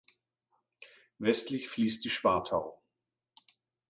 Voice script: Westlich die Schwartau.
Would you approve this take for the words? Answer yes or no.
no